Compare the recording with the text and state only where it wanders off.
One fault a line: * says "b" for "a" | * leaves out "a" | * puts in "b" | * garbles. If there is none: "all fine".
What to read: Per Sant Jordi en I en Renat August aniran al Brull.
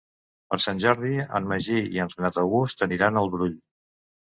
* puts in "Magí"